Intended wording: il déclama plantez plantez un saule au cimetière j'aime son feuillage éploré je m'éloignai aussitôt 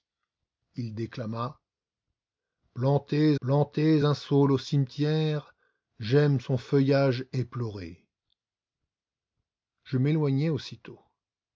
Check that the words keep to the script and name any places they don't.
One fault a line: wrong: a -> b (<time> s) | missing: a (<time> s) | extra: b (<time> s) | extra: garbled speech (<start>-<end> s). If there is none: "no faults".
no faults